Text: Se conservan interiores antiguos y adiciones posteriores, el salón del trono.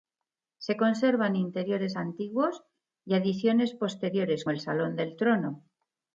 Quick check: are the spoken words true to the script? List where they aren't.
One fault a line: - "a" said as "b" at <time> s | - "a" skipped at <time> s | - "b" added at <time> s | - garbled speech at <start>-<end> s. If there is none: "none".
none